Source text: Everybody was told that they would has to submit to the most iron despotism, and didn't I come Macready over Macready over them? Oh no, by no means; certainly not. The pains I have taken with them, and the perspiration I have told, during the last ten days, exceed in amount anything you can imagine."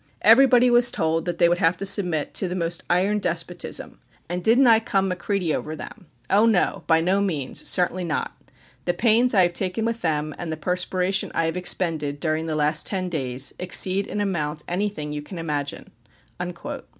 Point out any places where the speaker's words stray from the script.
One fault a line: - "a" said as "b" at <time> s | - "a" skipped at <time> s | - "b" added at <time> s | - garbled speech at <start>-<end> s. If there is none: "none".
- "has" said as "have" at 1.6 s
- "Macready over" skipped at 5.7 s
- "told" said as "expended" at 11.6 s